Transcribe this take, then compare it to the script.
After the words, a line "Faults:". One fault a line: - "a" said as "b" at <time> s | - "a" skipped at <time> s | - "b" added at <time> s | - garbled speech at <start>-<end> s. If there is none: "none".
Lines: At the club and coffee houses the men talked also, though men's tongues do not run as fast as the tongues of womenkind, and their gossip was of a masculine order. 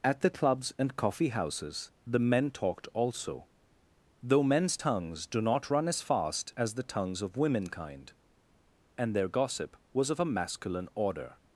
At the clubs and coffee houses the men talked also, though men's tongues do not run as fast as the tongues of womenkind, and their gossip was of a masculine order.
Faults:
- "club" said as "clubs" at 0.3 s